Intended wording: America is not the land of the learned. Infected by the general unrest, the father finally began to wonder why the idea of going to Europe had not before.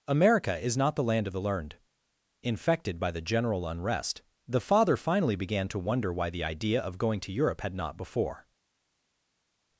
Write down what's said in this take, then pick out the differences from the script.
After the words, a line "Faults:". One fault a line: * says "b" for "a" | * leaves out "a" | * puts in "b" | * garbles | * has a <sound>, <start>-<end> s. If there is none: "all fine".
America is not the land of the learned. Infected by the general unrest, the father finally began to wonder why the idea of going to Europe had not before.
Faults:
all fine